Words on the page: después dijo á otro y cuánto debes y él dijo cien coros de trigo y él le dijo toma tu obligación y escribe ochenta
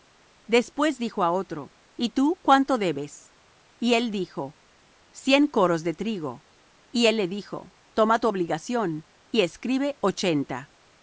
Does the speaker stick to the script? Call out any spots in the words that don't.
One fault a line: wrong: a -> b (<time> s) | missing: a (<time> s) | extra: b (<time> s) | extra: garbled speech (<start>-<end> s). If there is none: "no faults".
extra: tú (2.1 s)